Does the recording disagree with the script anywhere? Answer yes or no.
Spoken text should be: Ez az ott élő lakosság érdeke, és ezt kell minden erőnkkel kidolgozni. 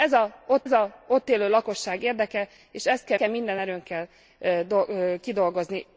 yes